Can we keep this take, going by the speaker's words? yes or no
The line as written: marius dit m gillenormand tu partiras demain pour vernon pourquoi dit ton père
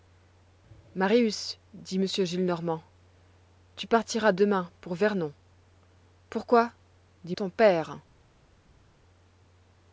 yes